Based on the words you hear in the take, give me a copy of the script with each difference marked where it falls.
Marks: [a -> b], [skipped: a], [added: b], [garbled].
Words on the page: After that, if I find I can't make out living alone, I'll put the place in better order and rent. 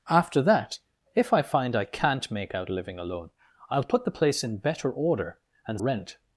After that, if I find I can't make out living alone, I'll put the place in better order and rent.